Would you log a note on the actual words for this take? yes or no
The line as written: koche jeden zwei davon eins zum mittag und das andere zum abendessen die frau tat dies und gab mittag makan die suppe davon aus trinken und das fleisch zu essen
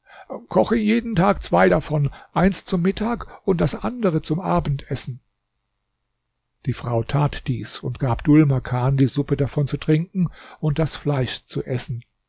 yes